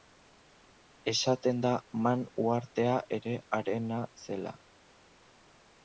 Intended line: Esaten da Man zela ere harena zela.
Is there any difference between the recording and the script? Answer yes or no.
yes